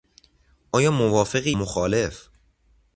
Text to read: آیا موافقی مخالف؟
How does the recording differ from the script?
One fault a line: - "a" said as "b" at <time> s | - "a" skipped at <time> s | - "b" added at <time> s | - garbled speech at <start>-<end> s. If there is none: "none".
none